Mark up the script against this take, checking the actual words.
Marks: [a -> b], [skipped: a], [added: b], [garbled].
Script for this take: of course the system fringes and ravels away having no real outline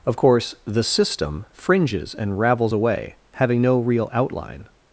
of course the system fringes and ravels away having no real outline